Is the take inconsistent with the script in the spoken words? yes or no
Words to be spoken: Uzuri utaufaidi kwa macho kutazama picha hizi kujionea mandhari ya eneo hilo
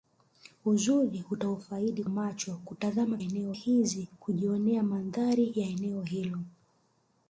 yes